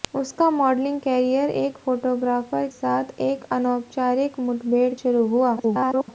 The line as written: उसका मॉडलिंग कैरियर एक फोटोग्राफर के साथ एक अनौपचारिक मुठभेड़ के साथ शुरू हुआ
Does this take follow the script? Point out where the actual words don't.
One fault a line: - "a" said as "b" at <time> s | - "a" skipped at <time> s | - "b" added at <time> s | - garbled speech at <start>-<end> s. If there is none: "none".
- "के" skipped at 2.7 s
- "के साथ" skipped at 4.9 s
- garbled speech at 5.6-6.1 s